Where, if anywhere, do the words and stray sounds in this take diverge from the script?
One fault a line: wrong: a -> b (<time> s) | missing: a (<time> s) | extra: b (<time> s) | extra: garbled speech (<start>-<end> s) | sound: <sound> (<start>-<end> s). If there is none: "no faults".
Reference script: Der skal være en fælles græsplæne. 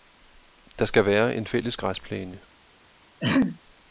sound: throat clearing (3.2-3.6 s)